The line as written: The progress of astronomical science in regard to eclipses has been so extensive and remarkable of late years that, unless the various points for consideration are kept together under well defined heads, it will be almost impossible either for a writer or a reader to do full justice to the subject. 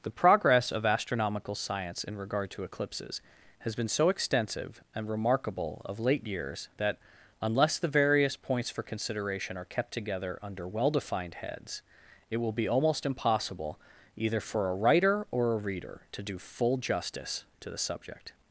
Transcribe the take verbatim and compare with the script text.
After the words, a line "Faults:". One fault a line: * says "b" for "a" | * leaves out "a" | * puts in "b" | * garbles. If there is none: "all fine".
The progress of astronomical science in regard to eclipses has been so extensive and remarkable of late years that, unless the various points for consideration are kept together under well defined heads, it will be almost impossible either for a writer or a reader to do full justice to the subject.
Faults:
all fine